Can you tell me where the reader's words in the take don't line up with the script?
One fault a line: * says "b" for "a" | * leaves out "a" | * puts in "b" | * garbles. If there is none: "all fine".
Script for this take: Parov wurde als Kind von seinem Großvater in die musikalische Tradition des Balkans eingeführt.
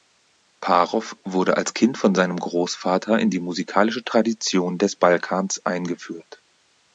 all fine